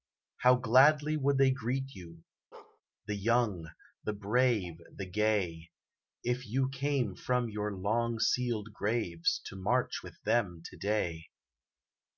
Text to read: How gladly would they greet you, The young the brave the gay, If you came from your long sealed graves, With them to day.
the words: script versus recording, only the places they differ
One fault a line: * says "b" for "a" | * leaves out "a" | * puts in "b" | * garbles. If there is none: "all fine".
* puts in "To march"